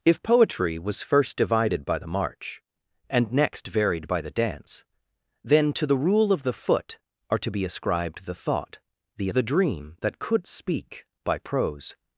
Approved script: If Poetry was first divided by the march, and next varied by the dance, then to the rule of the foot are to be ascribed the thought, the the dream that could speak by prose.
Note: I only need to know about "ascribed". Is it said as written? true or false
true